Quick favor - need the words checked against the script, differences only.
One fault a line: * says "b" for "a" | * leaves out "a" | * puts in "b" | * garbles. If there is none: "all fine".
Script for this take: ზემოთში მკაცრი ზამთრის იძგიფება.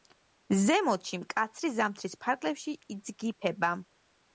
* puts in "ფარგლებში"